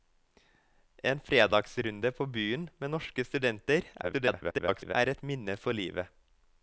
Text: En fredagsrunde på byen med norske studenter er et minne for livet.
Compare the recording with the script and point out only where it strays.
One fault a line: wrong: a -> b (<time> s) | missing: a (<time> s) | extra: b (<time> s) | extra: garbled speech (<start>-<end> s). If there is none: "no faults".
extra: garbled speech (4.0-5.0 s)